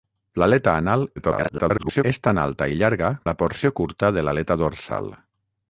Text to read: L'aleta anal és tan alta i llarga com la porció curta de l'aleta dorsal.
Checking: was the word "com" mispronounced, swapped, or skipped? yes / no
yes